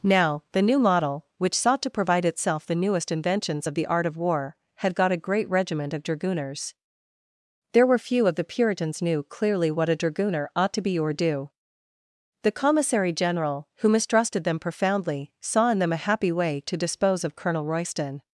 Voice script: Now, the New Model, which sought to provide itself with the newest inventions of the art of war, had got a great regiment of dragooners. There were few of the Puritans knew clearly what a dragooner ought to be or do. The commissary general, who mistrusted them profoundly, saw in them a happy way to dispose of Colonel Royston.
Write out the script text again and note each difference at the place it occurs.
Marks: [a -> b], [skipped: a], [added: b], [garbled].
Now, the New Model, which sought to provide itself [skipped: with] the newest inventions of the art of war, had got a great regiment of dragooners. There were few of the Puritans knew clearly what a dragooner ought to be or do. The commissary general, who mistrusted them profoundly, saw in them a happy way to dispose of Colonel Royston.